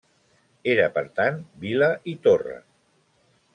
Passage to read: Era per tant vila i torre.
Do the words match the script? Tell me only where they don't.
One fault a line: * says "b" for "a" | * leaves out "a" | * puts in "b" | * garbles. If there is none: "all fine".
all fine